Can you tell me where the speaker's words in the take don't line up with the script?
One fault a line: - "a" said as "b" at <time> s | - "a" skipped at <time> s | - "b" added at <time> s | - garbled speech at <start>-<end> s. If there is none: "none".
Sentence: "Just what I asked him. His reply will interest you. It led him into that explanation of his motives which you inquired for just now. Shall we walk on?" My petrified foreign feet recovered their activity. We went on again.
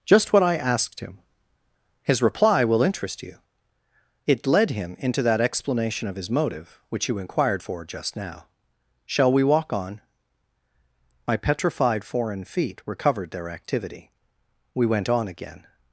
- "motives" said as "motive" at 6.3 s